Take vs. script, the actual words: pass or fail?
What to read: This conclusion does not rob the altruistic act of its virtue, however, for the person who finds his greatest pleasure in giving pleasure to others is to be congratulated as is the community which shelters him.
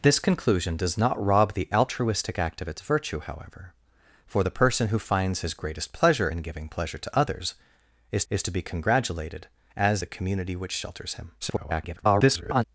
fail